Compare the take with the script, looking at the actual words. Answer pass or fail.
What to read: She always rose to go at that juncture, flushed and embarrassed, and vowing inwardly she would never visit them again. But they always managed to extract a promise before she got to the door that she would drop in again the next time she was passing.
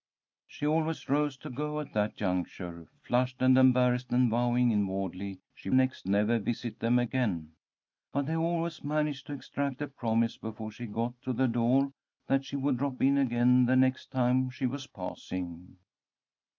fail